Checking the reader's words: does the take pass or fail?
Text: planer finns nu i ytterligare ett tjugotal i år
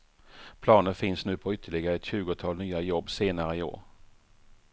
fail